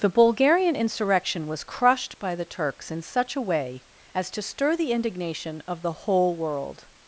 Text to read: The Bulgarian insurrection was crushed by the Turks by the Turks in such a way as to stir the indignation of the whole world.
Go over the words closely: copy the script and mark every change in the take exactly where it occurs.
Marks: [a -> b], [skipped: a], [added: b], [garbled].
The Bulgarian insurrection was crushed by the Turks [skipped: by the Turks] in such a way as to stir the indignation of the whole world.